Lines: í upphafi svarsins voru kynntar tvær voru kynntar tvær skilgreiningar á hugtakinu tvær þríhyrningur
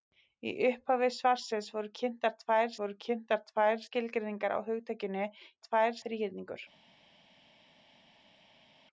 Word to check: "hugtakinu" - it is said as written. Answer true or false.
true